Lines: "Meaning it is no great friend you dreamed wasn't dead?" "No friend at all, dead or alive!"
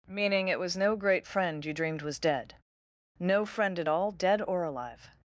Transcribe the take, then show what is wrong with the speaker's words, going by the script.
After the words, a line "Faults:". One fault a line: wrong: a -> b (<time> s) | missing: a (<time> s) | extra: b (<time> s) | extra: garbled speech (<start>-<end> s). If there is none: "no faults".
"Meaning it was no great friend you dreamed was dead?" "No friend at all, dead or alive!"
Faults:
wrong: is -> was (0.6 s)
wrong: wasn't -> was (2.0 s)